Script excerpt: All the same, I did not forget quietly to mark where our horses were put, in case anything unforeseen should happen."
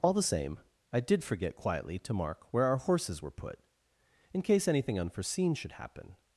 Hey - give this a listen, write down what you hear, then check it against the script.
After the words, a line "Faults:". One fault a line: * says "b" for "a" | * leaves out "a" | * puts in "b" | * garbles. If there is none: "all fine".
All the same, I did forget quietly to mark where our horses were put, in case anything unforeseen should happen."
Faults:
* leaves out "not"